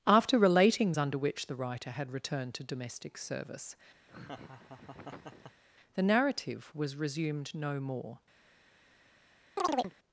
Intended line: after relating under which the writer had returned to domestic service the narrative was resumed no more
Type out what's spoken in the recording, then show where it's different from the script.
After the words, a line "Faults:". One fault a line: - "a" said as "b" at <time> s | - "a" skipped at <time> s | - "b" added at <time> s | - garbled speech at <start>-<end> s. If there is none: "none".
after relating under which the writer had returned to domestic service the narrative was resumed no more
Faults:
none